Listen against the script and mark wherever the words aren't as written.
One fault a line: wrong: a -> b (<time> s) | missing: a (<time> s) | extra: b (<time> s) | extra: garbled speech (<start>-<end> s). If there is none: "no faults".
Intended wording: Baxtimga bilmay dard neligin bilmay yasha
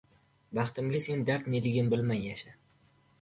wrong: bilmay -> sen (1.0 s)